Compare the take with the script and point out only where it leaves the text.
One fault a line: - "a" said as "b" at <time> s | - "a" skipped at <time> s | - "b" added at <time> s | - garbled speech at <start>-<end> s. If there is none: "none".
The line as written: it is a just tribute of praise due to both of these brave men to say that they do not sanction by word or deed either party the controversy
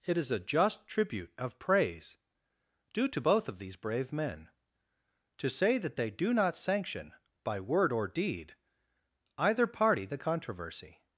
none